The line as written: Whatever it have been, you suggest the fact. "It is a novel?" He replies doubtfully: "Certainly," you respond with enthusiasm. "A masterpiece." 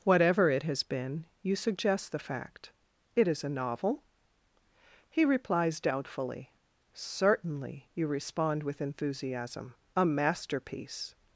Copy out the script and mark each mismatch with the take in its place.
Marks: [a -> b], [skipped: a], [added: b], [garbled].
Whatever it [have -> has] been, you suggest the fact. "It is a novel?" He replies doubtfully: "Certainly," you respond with enthusiasm. "A masterpiece."